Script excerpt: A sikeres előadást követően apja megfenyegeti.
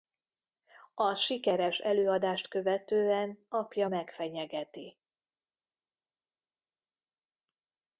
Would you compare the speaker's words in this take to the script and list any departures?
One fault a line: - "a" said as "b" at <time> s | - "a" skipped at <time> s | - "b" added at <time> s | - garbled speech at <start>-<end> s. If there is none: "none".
none